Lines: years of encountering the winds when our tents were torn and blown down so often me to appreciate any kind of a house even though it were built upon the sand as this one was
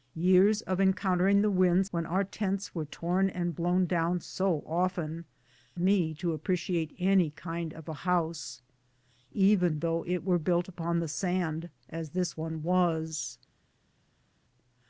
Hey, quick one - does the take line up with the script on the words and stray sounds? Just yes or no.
yes